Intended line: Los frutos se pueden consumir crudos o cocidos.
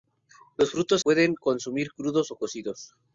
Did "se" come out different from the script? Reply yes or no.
yes